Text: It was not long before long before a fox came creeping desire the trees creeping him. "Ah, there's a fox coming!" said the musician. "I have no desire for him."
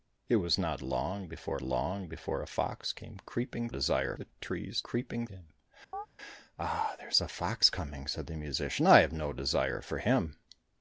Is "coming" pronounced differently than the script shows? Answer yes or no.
no